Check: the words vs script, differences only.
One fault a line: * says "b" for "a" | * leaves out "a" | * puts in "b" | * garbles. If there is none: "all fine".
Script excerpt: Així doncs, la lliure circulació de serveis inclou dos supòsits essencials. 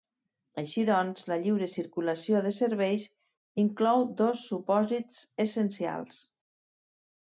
all fine